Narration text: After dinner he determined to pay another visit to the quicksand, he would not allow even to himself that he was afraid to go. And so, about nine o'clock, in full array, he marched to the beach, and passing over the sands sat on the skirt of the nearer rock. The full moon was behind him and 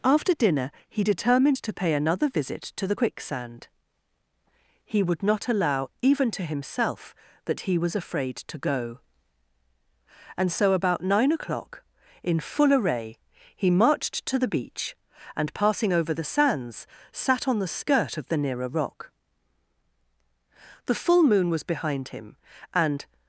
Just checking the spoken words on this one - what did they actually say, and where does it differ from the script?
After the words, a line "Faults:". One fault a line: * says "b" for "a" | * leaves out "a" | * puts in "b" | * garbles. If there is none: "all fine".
After dinner he determined to pay another visit to the quicksand, he would not allow even to himself that he was afraid to go. And so, about nine o'clock, in full array, he marched to the beach, and passing over the sands sat on the skirt of the nearer rock. The full moon was behind him and
Faults:
all fine